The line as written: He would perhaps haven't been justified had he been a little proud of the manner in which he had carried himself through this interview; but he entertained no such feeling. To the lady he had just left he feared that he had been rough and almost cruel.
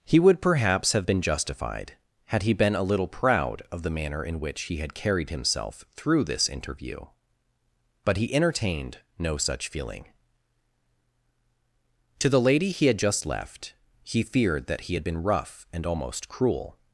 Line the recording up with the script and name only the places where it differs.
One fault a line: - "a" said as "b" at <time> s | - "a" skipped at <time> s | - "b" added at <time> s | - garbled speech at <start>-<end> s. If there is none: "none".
- "haven't" said as "have" at 0.9 s